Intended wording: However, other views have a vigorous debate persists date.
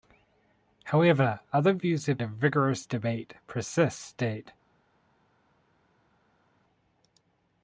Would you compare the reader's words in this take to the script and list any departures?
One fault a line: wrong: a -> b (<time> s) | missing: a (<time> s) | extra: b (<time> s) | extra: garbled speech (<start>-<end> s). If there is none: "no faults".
no faults